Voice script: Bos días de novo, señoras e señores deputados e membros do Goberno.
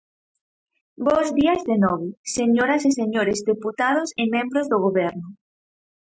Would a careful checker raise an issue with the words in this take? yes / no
no